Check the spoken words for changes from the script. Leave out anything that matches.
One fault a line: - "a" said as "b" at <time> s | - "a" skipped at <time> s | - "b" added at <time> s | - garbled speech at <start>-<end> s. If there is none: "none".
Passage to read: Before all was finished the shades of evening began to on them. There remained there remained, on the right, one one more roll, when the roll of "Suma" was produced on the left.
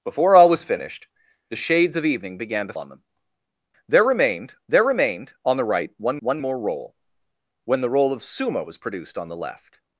none